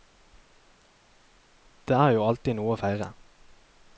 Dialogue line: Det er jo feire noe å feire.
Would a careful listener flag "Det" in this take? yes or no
no